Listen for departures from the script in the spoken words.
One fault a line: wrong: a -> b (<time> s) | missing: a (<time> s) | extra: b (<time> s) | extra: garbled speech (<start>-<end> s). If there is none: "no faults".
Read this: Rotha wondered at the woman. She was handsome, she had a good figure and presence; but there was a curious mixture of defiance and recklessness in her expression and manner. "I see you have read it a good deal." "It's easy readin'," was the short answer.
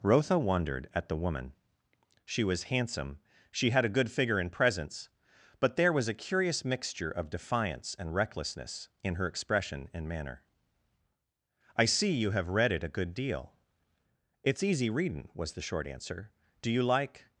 extra: Do you like (16.6 s)